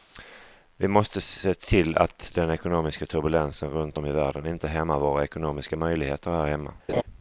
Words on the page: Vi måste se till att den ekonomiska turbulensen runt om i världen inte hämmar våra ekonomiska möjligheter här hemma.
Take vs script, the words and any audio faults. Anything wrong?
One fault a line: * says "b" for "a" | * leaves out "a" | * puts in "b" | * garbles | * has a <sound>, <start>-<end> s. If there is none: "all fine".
* has a laugh, 6.9-7.0 s